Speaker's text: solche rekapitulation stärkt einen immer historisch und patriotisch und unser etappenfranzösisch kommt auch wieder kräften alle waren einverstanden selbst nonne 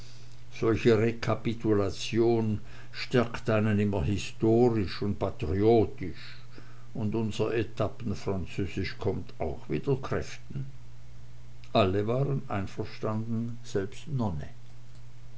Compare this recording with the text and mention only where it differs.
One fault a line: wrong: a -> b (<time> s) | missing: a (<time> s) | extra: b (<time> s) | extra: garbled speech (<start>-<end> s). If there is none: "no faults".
no faults